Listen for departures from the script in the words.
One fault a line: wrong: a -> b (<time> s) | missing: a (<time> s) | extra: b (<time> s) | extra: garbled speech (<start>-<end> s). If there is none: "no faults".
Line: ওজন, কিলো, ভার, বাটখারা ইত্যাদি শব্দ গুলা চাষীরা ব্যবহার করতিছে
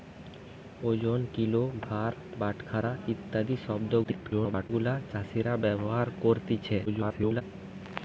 extra: garbled speech (4.0-4.7 s)
extra: garbled speech (6.9-7.4 s)